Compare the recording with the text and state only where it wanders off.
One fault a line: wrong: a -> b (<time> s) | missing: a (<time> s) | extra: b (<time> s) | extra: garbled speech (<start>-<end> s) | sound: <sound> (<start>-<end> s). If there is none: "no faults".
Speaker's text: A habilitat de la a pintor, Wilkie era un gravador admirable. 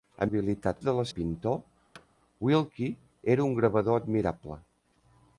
sound: thud (1.9-2.1 s)